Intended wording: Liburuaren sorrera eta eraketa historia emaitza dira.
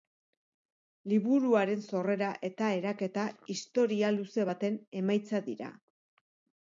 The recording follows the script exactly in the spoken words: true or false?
false